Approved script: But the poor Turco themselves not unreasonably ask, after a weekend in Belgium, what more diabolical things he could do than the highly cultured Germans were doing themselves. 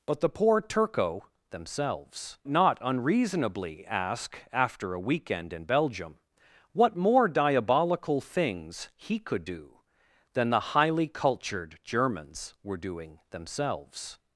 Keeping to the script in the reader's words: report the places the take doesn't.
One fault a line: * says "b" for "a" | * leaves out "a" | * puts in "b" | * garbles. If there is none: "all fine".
all fine